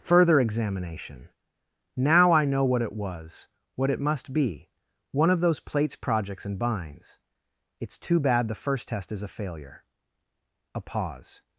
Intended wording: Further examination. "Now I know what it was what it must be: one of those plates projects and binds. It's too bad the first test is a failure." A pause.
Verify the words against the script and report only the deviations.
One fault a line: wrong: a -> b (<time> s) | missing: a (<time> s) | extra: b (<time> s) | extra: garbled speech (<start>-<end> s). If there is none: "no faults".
no faults